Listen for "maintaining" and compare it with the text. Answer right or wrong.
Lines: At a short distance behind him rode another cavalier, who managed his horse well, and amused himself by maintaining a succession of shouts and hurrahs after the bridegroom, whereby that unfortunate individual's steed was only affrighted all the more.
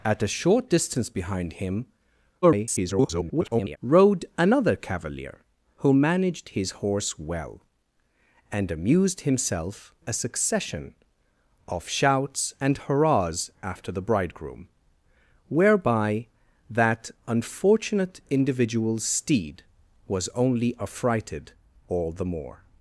wrong